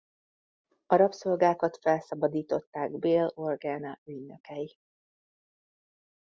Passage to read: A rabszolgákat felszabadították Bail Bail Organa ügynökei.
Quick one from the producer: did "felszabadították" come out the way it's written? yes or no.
yes